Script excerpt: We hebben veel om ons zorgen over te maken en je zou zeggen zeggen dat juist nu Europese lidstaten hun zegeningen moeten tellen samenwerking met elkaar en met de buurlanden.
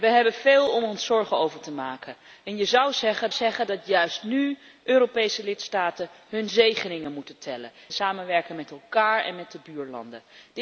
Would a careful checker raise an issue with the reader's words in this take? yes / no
no